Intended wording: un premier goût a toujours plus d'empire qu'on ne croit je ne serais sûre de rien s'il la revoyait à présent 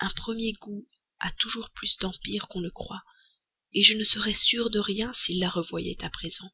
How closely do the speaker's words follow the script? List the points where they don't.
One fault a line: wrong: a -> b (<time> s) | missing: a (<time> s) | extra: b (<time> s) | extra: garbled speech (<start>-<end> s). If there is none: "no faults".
no faults